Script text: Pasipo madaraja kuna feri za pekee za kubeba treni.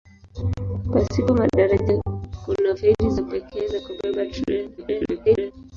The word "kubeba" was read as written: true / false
true